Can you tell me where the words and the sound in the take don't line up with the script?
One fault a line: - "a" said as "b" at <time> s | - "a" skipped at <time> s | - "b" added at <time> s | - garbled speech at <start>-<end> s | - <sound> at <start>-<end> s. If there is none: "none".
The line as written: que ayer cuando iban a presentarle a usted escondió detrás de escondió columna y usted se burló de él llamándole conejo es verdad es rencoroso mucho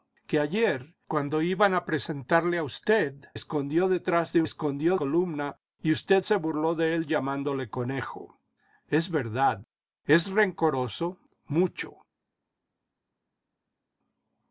none